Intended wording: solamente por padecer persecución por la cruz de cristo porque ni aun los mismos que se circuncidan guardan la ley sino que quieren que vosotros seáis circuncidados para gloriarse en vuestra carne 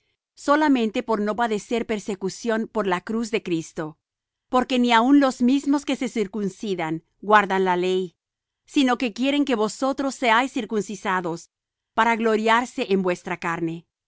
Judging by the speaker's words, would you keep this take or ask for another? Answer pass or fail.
fail